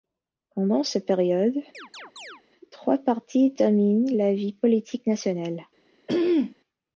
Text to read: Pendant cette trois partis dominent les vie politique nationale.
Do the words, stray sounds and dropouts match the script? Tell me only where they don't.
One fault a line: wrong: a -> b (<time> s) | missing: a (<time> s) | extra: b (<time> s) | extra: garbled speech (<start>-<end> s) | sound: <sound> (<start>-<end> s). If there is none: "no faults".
extra: période (1.1 s)
sound: chirp (1.7-2.4 s)
wrong: les -> la (4.1 s)
sound: throat clearing (6.1-6.6 s)